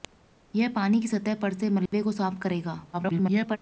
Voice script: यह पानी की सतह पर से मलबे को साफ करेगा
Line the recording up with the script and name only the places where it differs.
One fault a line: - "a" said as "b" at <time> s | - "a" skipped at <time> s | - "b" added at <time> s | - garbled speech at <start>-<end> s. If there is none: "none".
- garbled speech at 2.9-3.6 s